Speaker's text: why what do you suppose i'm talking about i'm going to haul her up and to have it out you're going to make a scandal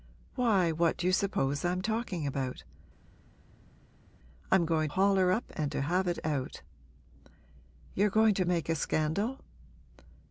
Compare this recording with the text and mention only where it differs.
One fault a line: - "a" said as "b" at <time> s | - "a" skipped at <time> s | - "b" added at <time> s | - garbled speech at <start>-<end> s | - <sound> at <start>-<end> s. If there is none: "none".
- "to" skipped at 4.9 s